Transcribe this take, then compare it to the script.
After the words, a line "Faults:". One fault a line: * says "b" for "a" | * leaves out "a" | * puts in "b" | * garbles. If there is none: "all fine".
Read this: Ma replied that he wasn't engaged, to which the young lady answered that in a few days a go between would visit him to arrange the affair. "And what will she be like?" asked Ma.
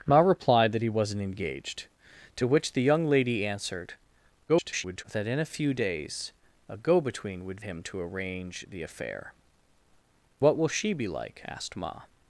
Ma replied that he wasn't engaged, to which the young lady answered [garbled] that in a few days a go between would him to arrange the affair. "What will she be like?" asked Ma.
Faults:
* garbles
* leaves out "visit"
* leaves out "And"